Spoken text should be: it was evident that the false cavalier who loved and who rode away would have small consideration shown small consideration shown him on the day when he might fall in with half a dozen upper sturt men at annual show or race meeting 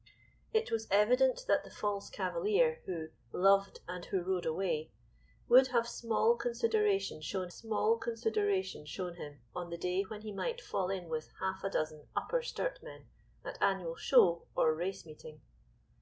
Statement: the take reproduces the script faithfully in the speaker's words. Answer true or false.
true